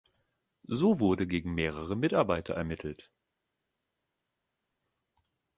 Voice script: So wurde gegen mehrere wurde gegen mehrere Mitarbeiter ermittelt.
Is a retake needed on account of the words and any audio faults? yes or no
yes